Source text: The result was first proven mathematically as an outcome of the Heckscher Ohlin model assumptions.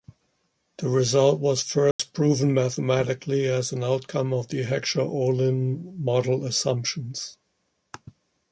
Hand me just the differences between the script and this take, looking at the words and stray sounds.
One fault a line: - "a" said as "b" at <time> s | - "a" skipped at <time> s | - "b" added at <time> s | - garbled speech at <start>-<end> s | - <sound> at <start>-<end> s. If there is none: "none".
- dropout at 1.9-2.0 s